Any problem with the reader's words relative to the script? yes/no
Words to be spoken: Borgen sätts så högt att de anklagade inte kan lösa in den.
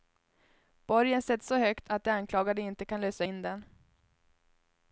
no